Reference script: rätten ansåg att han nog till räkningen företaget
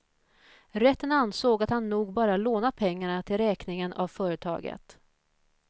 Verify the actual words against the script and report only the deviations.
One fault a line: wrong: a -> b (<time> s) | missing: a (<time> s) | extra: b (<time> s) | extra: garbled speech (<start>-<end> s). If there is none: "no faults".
extra: bara lånat pengarna (2.1 s)
extra: av (3.9 s)